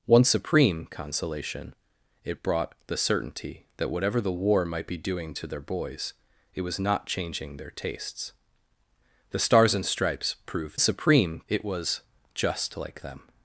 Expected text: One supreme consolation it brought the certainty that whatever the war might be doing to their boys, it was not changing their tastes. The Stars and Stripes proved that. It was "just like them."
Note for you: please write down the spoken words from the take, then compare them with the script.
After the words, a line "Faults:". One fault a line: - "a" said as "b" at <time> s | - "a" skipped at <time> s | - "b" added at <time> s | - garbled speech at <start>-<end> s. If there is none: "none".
One supreme consolation it brought the certainty that whatever the war might be doing to their boys, it was not changing their tastes. The Stars and Stripes proved supreme. It was "just like them."
Faults:
- "that" said as "supreme" at 10.8 s